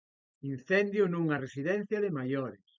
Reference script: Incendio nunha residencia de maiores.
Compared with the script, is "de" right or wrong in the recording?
right